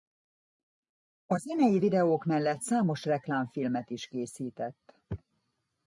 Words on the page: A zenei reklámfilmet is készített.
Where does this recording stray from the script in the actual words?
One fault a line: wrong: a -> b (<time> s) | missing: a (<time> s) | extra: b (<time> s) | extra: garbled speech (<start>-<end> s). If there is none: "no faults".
extra: videók mellett számos (1.8 s)